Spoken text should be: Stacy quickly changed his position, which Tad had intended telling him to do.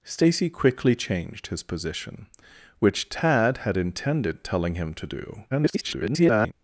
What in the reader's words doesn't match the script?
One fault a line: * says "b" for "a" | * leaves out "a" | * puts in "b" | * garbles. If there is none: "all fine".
* garbles